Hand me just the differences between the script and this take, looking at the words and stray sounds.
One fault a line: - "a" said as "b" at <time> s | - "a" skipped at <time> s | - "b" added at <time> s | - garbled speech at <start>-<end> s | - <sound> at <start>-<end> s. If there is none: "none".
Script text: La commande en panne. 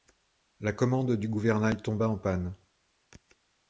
- "du gouvernail tomba" added at 1.1 s